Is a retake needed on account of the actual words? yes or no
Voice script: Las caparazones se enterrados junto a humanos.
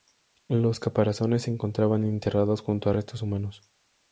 yes